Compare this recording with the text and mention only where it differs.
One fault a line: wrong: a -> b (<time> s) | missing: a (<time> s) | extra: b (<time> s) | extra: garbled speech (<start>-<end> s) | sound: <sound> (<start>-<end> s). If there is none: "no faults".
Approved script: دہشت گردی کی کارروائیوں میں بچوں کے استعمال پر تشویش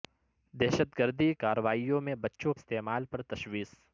missing: کی (1.3 s)
missing: کے (2.5 s)